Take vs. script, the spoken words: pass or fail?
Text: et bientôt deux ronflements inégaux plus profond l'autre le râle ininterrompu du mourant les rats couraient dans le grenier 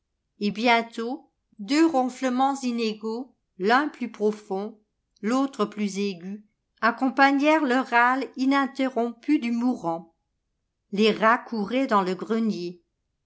fail